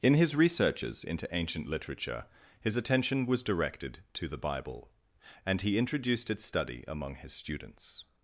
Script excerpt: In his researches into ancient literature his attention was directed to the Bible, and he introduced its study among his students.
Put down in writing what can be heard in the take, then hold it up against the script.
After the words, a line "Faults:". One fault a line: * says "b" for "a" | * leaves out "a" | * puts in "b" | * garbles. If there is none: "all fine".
In his researches into ancient literature his attention was directed to the Bible, and he introduced its study among his students.
Faults:
all fine